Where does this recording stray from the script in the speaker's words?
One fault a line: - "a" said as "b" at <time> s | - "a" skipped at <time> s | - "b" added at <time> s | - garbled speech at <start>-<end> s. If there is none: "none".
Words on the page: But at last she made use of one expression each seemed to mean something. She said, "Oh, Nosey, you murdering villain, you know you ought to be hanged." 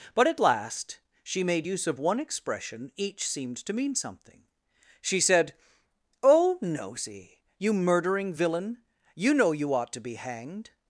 none